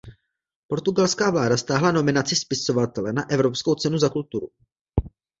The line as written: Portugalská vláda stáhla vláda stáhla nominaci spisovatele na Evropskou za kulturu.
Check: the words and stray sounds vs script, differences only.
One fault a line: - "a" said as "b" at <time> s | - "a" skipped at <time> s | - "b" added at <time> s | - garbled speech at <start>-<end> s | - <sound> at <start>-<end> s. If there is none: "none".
- "vláda stáhla" skipped at 1.9 s
- "cenu" added at 3.8 s